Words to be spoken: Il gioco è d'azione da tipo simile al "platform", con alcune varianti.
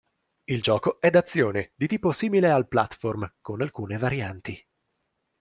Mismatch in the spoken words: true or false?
true